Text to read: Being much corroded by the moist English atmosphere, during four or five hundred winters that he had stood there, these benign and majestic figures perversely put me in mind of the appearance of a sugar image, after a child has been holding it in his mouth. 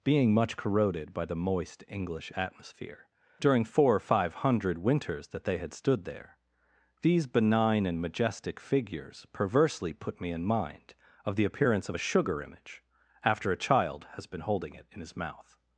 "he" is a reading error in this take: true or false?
true